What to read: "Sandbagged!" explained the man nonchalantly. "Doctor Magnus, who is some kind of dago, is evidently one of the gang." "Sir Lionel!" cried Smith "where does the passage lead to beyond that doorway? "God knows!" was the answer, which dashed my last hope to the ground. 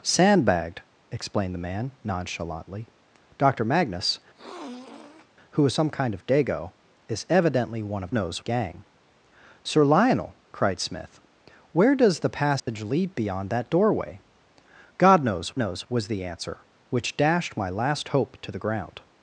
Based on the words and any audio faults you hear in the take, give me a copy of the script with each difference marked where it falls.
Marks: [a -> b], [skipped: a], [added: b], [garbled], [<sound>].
"Sandbagged!" explained the man nonchalantly. "Doctor Magnus, [sniff] who is some kind of dago, is evidently one of [the -> knows] gang." "Sir Lionel!" cried Smith "where does the passage [dropout] lead [skipped: to] beyond that doorway? "God knows!" [added: knows] was the answer, which dashed my last hope to the ground.